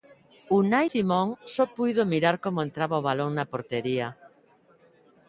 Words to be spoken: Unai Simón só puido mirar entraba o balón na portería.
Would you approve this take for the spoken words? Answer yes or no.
no